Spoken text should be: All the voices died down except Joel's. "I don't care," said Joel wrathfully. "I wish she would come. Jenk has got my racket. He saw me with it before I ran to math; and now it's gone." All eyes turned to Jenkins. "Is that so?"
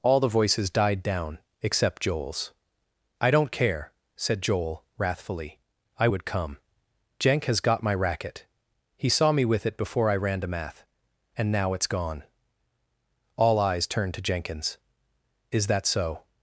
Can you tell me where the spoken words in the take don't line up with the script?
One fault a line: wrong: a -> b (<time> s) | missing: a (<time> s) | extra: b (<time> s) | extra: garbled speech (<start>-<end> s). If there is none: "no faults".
missing: wish she (6.1 s)